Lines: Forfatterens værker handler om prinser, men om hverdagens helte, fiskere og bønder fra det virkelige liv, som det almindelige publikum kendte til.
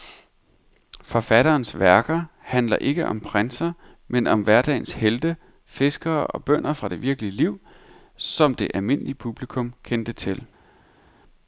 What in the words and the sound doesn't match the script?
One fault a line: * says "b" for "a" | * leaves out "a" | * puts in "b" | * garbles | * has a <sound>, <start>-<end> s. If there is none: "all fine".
* puts in "ikke"